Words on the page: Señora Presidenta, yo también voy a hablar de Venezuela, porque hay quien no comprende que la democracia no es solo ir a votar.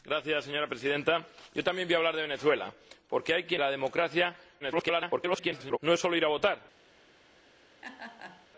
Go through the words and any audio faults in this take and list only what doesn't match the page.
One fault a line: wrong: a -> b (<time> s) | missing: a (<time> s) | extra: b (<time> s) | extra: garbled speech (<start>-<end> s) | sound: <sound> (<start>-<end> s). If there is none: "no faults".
missing: no comprende que (3.6 s)
extra: garbled speech (4.6-5.8 s)
sound: laugh (7.8-8.5 s)